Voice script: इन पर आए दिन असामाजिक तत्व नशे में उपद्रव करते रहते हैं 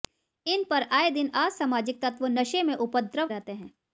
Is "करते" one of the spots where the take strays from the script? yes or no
yes